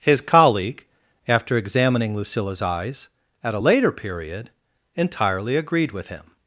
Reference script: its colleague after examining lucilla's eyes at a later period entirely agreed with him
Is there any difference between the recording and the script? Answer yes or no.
yes